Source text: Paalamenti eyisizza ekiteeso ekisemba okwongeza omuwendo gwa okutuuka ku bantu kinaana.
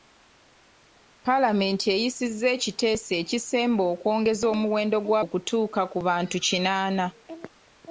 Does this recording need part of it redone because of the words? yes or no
no